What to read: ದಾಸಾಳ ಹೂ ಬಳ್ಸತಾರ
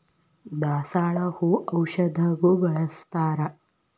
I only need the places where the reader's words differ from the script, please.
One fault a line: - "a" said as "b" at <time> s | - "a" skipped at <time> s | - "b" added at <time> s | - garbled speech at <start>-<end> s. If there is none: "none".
- "ಔಷಧಗು" added at 1.7 s